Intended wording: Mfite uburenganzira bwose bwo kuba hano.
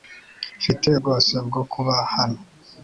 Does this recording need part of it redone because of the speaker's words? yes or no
yes